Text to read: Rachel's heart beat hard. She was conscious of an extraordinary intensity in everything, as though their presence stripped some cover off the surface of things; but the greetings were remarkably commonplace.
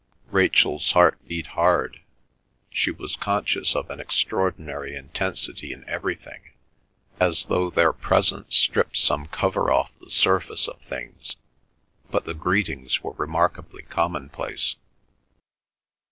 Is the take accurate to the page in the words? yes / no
yes